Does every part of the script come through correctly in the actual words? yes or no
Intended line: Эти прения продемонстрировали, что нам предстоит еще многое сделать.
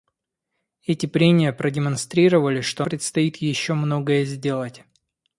no